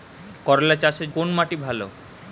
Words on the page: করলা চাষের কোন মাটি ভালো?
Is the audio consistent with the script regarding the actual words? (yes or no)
yes